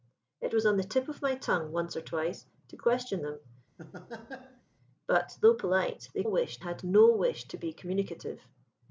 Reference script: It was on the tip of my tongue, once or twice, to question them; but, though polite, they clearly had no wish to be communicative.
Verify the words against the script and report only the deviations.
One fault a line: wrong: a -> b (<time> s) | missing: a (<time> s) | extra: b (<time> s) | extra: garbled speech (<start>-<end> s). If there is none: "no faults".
wrong: clearly -> wish (6.2 s)